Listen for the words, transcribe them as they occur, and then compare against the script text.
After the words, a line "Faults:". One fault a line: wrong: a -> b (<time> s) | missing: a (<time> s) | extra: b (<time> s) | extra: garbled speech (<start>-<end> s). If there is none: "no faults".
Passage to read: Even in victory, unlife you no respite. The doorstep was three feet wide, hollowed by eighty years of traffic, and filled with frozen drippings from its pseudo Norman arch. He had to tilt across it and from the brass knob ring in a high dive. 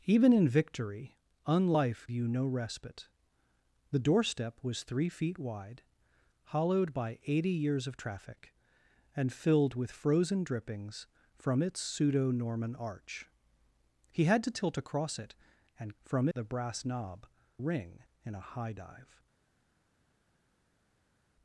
Even in victory, unlife you no respite. The doorstep was three feet wide, hollowed by eighty years of traffic, and filled with frozen drippings from its pseudo Norman arch. He had to tilt across it and from the brass knob ring in a high dive.
Faults:
no faults